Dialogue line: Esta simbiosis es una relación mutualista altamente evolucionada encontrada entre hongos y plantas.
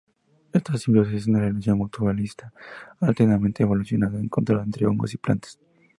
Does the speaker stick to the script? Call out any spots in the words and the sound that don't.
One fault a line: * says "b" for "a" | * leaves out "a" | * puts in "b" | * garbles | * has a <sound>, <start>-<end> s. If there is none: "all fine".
all fine